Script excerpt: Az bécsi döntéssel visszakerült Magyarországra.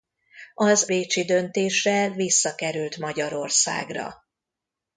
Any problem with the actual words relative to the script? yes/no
no